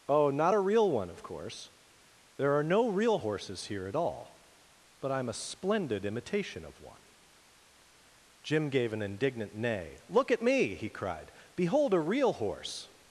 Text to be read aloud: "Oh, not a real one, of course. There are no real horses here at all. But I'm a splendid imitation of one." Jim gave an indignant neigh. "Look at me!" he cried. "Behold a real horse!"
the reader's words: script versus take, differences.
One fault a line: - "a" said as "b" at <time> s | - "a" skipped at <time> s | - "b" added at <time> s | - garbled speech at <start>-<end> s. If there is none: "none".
none